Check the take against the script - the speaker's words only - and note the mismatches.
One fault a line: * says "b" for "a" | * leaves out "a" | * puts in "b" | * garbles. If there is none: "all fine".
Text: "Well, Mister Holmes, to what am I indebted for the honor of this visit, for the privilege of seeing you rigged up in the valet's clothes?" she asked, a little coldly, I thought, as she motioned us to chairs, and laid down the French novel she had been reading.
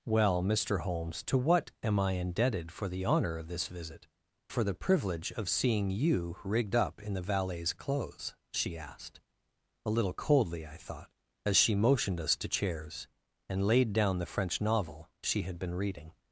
all fine